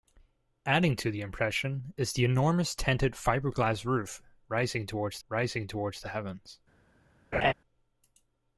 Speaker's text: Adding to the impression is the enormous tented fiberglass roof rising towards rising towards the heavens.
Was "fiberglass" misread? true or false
false